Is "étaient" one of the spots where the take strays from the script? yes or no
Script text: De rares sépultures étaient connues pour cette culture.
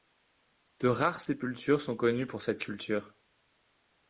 yes